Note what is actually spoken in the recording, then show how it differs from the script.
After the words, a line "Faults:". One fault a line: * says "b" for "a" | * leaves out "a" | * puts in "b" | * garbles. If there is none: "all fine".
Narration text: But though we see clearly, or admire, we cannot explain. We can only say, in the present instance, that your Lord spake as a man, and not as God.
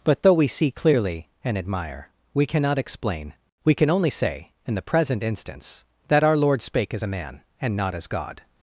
But though we see clearly, and admire, we cannot explain. We can only say, in the present instance, that our Lord spake as a man, and not as God.
Faults:
* says "and" for "or"
* says "our" for "your"